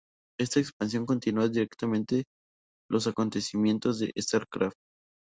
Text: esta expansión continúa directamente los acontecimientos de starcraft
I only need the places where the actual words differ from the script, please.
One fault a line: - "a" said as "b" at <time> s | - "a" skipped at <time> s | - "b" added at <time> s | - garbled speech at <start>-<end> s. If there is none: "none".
none